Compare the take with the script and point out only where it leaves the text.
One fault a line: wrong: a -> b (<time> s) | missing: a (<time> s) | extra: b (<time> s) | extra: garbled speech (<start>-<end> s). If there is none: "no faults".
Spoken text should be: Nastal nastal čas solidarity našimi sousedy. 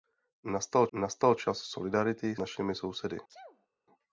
no faults